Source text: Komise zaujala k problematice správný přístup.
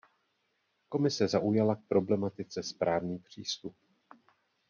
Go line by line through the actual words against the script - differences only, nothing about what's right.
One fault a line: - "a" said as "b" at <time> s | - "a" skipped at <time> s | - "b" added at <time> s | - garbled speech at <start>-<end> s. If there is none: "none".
none